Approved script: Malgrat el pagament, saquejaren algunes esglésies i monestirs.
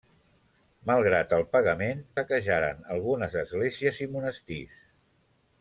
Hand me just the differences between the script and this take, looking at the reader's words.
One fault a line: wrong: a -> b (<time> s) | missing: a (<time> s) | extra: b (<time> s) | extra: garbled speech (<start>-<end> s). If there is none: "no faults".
no faults